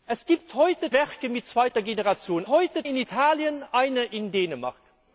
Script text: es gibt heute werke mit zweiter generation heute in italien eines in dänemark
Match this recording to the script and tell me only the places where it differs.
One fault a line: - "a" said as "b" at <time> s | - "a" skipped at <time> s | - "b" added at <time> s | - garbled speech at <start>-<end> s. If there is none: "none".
none